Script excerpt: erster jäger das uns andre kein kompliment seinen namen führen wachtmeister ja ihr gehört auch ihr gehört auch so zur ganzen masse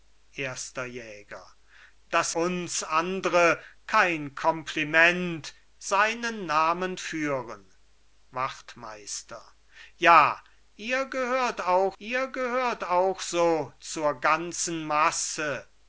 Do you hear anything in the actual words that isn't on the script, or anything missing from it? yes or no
no